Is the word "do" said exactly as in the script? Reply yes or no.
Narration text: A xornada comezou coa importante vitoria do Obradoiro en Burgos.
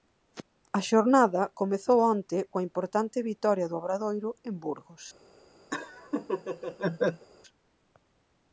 yes